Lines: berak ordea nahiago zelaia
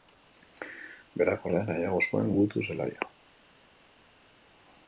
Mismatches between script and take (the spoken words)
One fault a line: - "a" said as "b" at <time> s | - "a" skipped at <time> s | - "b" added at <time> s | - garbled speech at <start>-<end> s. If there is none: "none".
- "zuen gudu" added at 2.1 s